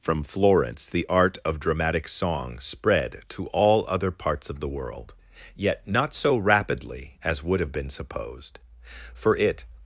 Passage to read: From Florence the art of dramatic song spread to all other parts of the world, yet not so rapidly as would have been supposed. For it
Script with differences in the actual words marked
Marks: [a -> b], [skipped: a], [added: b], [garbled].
From Florence the art of dramatic song spread to all other parts of the world, yet not so rapidly as would have been supposed. For it